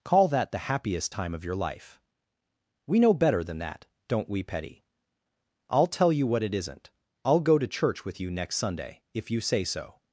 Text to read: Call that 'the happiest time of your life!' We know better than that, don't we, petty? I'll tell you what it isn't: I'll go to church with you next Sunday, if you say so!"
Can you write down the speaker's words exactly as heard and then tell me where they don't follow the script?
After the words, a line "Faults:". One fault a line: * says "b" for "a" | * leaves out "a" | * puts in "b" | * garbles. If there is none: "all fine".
Call that 'the happiest time of your life!' We know better than that, don't we, petty? I'll tell you what it isn't: I'll go to church with you next Sunday, if you say so!"
Faults:
all fine